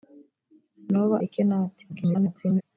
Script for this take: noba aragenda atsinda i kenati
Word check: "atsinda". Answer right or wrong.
wrong